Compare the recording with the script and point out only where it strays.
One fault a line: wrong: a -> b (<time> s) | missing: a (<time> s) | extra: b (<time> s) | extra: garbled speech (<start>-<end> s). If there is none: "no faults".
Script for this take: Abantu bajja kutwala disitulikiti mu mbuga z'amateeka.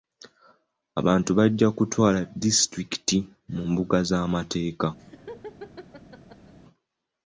no faults